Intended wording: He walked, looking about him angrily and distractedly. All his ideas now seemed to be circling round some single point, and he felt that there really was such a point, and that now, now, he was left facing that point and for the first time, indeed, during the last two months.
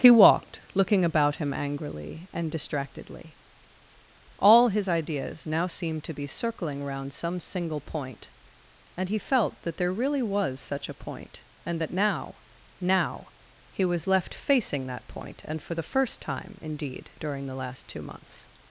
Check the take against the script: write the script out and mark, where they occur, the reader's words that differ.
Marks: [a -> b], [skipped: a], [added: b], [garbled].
He walked, looking about him angrily and distractedly. All his ideas now seemed to be circling round some single point, and he felt that there really was such a point, and that now, now, he was left facing that point and for the first time, indeed, during the last two months.